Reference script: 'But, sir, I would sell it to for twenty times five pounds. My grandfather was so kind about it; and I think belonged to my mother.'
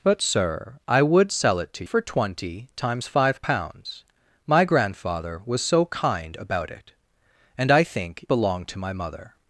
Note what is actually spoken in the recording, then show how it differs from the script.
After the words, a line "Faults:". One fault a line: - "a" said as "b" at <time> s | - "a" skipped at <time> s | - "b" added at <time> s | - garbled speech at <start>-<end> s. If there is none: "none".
'But, sir, I would sell it to for twenty times five pounds. My grandfather was so kind about it; and I think belonged to my mother.'
Faults:
none